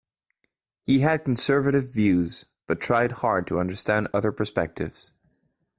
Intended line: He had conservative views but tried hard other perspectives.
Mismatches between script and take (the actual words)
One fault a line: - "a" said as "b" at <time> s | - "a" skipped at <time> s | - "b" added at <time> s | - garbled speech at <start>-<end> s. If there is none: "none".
- "to understand" added at 3.5 s